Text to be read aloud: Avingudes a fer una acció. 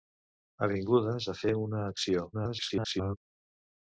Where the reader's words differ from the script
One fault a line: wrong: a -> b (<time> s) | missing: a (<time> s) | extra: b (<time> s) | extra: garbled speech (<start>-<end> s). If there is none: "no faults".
extra: garbled speech (2.3-3.2 s)